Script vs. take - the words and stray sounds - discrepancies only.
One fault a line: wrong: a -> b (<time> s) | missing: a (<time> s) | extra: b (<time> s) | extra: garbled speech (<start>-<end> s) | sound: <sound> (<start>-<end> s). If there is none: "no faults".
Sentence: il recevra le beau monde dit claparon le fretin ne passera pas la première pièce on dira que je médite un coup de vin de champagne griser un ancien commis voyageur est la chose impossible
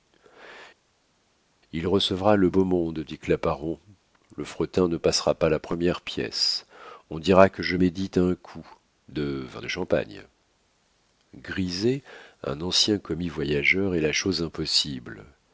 no faults